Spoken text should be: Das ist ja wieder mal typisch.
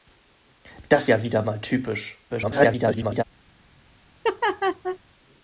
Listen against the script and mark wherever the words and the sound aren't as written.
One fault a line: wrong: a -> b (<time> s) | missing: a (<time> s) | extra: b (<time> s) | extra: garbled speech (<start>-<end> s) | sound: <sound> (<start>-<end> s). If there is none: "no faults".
missing: ist (1.1 s)
extra: garbled speech (2.3-3.2 s)
sound: laugh (4.2-5.0 s)